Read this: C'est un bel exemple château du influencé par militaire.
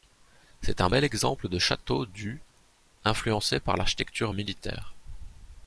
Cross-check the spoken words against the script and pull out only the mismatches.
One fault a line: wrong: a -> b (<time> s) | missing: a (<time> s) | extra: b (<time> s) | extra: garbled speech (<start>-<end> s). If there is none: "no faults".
extra: de (1.5 s)
extra: l'architecture (3.7 s)